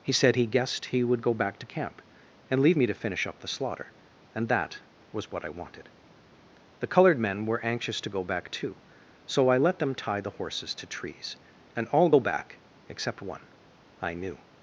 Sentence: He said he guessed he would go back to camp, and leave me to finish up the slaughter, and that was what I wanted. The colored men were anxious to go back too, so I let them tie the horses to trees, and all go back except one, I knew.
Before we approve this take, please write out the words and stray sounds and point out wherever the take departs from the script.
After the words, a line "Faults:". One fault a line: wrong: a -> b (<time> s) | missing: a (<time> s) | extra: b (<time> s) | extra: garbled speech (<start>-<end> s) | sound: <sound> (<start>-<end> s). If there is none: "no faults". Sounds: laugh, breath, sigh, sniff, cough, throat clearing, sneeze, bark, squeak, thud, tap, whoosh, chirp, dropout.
He said he guessed he would go back to camp, and leave me to finish up the slaughter, and that was what I wanted. The colored men were anxious to go back too, so I let them tie the horses to trees, and all go back except one, I knew.
Faults:
no faults